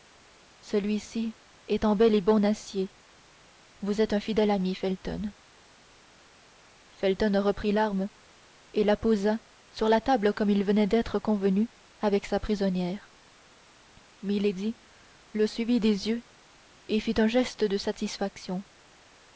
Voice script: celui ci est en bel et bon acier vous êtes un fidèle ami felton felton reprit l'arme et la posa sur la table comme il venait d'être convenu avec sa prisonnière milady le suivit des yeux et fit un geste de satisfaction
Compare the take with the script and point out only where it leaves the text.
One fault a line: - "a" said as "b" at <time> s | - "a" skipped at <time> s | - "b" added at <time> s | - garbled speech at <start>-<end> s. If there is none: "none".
none